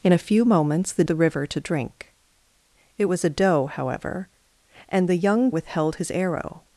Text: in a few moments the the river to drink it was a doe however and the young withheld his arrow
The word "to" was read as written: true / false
true